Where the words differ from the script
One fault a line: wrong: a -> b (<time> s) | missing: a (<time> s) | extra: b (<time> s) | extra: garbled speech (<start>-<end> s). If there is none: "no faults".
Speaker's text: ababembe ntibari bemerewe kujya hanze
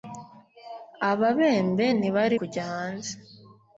missing: bemerewe (2.4 s)